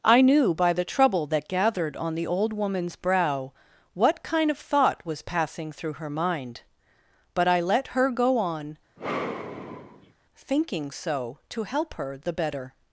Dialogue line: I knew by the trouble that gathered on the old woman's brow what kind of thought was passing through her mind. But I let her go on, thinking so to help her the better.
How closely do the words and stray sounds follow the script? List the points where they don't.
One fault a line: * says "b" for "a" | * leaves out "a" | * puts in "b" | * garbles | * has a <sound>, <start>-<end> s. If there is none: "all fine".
* has a sigh, 9.0-10.1 s